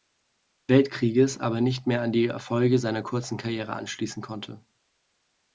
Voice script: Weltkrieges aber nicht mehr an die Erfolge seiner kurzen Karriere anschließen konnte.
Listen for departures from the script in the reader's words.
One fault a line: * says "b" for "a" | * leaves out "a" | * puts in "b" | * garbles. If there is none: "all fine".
all fine